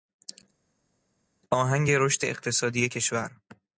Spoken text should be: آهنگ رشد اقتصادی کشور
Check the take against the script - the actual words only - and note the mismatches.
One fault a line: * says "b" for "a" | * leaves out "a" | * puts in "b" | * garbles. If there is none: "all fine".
all fine